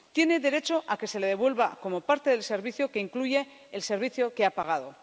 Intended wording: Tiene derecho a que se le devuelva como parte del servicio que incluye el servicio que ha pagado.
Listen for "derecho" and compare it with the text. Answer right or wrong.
right